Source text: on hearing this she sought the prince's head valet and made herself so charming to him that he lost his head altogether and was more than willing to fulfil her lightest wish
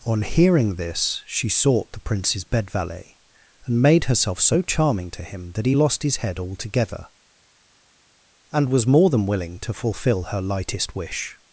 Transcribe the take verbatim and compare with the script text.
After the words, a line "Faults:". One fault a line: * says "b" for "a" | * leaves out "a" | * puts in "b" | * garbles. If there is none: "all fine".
on hearing this she sought the prince's bed valet and made herself so charming to him that he lost his head altogether and was more than willing to fulfil her lightest wish
Faults:
* says "bed" for "head"